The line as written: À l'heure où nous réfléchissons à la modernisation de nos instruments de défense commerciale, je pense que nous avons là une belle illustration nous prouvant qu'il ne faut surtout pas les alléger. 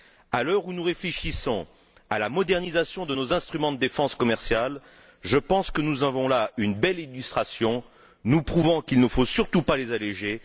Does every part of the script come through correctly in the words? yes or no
yes